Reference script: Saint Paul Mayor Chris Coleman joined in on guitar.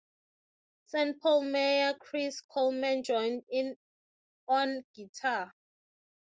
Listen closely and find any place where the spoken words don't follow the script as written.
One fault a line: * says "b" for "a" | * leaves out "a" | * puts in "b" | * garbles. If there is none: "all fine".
all fine